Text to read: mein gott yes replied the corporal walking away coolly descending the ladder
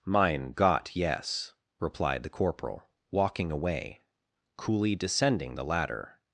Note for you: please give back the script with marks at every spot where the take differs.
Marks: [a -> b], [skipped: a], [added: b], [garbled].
mein gott yes replied the corporal walking away coolly descending the ladder